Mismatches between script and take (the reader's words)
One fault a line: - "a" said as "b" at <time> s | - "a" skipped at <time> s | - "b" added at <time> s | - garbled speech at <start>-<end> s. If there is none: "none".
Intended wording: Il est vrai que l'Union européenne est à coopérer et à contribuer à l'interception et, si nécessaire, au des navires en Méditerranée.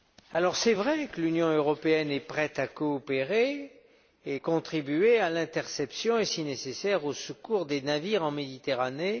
- "prête" added at 2.2 s
- "secours" added at 7.1 s